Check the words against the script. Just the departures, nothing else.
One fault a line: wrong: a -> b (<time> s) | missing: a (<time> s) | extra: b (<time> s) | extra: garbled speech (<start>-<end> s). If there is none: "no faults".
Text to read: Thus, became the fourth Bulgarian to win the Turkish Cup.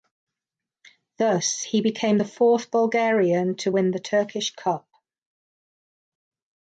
extra: he (1.6 s)